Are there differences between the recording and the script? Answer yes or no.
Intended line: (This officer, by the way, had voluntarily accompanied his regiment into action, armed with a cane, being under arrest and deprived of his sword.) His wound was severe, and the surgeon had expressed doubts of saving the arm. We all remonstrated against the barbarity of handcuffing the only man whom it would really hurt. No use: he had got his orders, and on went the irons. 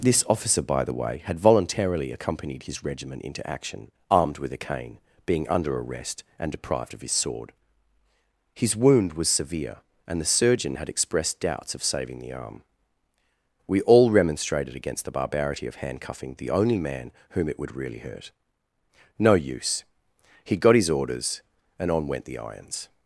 yes